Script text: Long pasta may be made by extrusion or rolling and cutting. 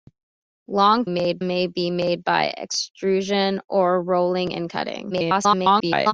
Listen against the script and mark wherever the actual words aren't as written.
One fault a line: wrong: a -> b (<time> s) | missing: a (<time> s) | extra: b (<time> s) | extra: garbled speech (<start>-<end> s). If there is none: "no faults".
wrong: pasta -> made (1.1 s)
extra: garbled speech (5.1-6.1 s)